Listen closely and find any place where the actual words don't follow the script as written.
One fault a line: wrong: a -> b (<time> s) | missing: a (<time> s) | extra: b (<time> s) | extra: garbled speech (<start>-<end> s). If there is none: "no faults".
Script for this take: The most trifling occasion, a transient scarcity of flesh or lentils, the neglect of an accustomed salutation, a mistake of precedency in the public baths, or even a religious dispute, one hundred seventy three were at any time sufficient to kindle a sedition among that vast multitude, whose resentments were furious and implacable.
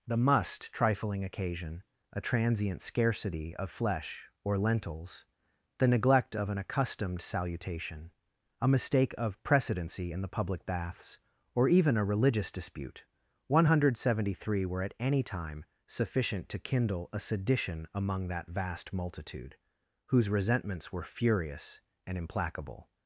wrong: most -> must (0.2 s)